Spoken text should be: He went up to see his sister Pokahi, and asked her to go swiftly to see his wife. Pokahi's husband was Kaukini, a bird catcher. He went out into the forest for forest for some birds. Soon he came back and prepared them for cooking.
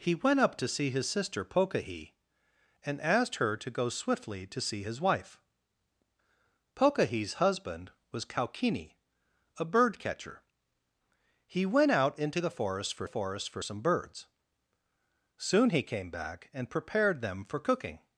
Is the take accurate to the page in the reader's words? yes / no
yes